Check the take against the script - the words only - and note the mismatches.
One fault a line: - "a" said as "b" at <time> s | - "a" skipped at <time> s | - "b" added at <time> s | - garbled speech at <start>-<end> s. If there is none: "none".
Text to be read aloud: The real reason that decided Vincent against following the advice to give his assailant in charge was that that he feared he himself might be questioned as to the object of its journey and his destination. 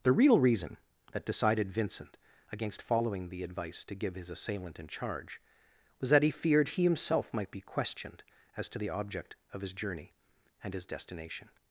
- "that" skipped at 6.2 s
- "its" said as "his" at 9.6 s